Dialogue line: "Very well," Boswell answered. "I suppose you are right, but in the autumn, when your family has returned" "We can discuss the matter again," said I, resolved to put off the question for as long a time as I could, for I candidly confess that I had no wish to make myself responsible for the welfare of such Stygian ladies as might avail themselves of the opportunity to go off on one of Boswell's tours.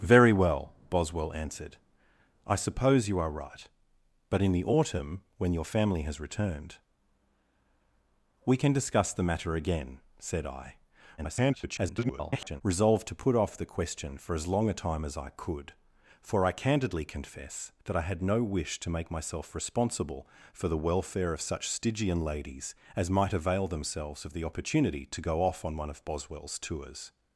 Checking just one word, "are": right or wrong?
right